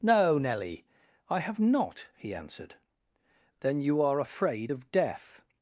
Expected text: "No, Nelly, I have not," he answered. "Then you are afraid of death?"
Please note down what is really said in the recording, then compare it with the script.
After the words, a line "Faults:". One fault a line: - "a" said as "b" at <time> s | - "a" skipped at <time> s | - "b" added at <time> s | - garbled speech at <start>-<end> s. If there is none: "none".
"No, Nelly, I have not," he answered. "Then you are afraid of death?"
Faults:
none